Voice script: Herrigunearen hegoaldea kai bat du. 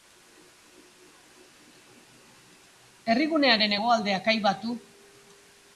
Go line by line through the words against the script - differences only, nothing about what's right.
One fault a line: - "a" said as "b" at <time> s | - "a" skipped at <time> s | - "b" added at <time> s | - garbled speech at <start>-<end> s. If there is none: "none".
none